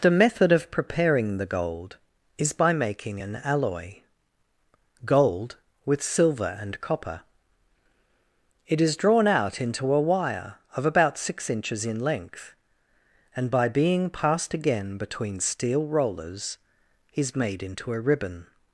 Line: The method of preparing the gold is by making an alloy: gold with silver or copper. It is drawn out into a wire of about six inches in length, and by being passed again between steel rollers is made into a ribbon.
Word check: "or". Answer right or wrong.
wrong